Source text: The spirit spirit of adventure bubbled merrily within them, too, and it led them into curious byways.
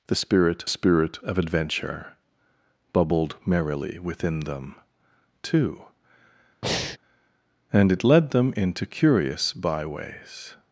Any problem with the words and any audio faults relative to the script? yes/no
yes